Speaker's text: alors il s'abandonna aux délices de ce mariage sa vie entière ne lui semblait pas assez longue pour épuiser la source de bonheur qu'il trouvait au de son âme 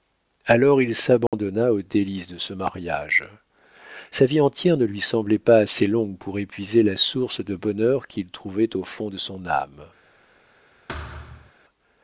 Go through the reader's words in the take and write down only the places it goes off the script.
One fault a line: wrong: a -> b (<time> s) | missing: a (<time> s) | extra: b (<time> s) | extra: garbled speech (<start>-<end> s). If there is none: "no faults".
extra: fond (8.8 s)